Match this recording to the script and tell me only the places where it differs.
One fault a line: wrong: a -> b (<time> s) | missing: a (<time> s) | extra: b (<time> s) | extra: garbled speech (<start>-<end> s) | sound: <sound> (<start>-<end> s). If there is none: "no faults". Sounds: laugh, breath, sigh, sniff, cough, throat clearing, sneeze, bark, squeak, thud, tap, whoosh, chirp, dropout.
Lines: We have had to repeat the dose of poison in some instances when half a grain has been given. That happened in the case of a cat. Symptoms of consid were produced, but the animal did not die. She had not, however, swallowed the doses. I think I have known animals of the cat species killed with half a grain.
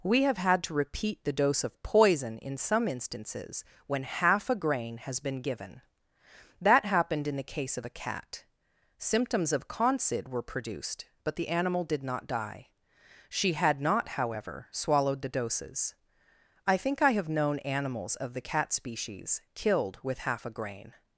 no faults